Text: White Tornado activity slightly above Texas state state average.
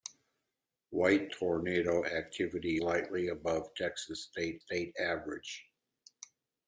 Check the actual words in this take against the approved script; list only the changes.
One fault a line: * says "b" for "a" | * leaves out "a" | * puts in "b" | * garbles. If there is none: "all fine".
all fine